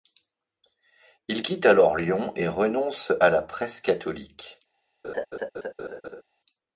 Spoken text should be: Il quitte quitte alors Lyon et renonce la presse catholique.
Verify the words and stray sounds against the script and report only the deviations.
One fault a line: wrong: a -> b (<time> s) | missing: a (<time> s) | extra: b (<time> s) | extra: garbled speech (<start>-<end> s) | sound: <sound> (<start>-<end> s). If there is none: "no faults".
missing: quitte (1.7 s)
extra: à (3.2 s)
sound: laugh (5.0-6.2 s)